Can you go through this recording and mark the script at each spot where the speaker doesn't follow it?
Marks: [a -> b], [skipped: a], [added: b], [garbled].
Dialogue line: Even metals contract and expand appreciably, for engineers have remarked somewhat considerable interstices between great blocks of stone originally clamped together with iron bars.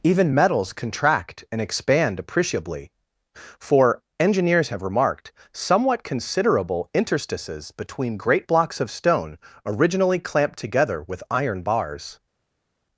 Even metals contract and expand appreciably, for engineers have remarked somewhat considerable interstices between great blocks of stone originally clamped together with iron bars.